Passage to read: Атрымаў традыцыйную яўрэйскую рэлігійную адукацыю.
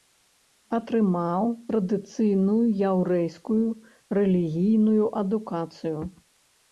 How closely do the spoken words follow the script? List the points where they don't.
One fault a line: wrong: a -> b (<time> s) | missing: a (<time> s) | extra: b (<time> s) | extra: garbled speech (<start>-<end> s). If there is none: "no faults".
no faults